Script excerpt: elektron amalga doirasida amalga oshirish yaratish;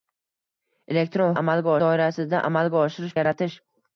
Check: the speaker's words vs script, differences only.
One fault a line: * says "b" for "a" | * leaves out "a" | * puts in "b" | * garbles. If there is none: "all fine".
all fine